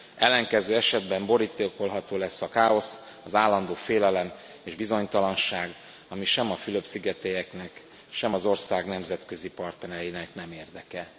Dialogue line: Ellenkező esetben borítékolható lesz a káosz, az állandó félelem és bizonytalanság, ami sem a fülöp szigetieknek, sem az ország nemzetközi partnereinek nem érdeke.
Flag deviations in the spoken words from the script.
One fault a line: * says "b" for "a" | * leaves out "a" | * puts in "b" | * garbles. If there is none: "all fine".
all fine